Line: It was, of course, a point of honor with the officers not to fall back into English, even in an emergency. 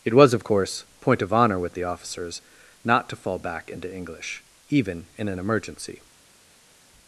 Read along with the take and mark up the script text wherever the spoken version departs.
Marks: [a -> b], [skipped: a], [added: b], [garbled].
It was, of course, [skipped: a] point of honor with the officers not to fall back into English, even in an emergency.